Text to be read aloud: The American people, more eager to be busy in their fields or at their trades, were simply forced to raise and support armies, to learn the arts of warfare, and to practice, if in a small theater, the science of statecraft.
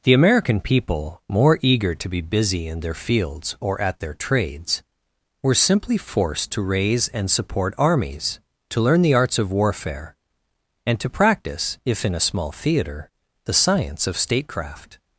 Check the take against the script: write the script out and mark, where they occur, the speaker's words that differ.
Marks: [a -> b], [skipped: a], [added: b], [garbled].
The American people, more eager to be busy in their fields or at their trades, were simply forced to raise and support armies, to learn the arts of warfare, and to practice, if in a small theater, the science of statecraft.